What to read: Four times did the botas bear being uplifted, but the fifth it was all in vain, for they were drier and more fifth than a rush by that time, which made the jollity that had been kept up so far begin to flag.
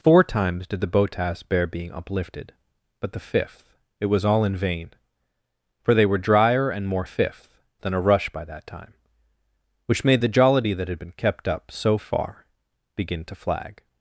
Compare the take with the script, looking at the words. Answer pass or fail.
pass